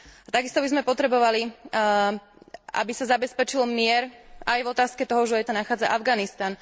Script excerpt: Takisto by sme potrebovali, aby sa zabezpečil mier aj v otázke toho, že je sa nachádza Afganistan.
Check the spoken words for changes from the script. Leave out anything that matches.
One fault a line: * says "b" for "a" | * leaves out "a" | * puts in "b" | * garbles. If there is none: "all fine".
all fine